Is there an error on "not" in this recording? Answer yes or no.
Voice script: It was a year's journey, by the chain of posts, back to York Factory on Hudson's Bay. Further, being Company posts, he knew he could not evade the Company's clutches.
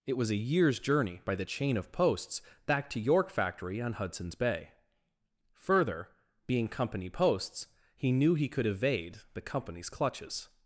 yes